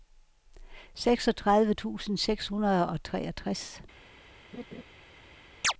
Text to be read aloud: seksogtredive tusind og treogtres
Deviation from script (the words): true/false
true